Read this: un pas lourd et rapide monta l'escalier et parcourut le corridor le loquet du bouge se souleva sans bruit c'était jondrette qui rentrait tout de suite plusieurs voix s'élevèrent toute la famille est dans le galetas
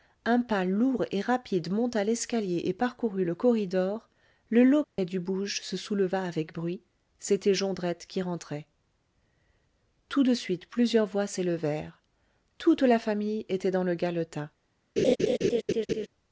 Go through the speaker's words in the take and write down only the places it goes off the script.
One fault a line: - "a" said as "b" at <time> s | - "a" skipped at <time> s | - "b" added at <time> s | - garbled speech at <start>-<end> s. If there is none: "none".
- "sans" said as "avec" at 6.2 s
- "est" said as "était" at 13.5 s